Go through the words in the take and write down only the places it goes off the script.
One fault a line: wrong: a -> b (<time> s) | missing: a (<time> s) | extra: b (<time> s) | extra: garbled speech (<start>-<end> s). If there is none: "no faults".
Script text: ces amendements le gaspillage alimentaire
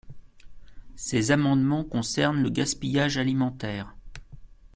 extra: concernent (1.8 s)